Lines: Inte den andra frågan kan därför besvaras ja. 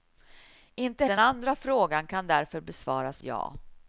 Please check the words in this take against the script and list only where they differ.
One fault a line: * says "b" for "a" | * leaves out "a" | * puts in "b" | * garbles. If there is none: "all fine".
all fine